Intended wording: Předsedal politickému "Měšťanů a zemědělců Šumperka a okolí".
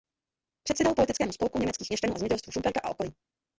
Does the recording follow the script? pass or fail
fail